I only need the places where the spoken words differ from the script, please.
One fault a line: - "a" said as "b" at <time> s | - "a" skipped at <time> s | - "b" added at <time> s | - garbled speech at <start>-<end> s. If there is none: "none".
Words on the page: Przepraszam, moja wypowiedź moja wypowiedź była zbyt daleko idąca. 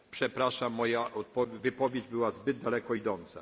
- "moja wypowiedź" skipped at 2.1 s